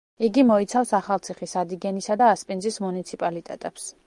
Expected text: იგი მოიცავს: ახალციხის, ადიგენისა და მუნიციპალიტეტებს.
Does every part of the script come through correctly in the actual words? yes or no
no